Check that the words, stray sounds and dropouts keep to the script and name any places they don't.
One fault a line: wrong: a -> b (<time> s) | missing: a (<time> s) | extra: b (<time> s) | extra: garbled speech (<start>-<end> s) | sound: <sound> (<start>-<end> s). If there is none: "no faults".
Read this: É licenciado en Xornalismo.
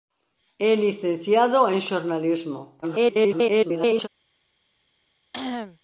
extra: garbled speech (2.8-4.1 s)
sound: cough (5.3-5.8 s)